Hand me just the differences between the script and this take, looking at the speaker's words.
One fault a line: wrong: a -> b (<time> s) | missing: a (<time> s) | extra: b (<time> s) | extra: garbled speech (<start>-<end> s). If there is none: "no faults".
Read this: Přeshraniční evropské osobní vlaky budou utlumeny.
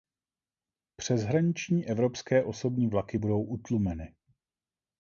no faults